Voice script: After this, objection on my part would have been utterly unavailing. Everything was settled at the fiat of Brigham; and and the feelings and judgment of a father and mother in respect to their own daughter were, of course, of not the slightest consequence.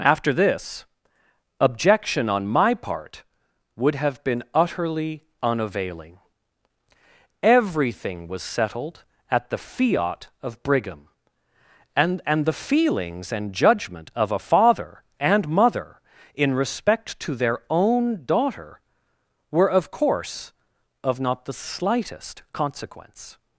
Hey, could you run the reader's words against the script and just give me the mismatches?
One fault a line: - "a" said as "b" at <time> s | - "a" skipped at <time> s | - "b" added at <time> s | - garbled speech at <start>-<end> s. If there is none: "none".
none